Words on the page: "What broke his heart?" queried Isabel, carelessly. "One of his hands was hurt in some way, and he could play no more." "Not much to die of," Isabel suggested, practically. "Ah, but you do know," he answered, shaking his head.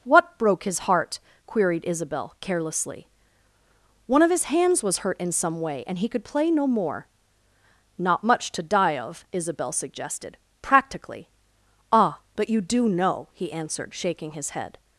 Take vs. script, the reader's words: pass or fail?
pass